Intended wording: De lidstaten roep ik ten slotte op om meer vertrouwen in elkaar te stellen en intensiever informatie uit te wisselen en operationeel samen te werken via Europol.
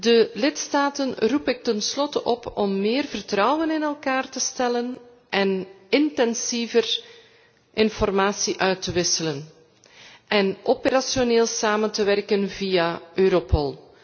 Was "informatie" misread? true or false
false